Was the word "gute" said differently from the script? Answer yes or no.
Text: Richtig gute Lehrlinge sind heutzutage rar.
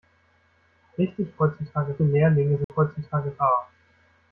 yes